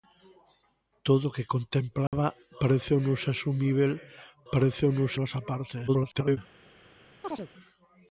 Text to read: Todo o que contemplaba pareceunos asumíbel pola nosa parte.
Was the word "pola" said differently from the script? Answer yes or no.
yes